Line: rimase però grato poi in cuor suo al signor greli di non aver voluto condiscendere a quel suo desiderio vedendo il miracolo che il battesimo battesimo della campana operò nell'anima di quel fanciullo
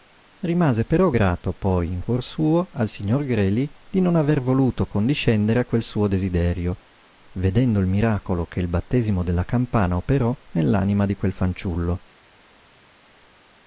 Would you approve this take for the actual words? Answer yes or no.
no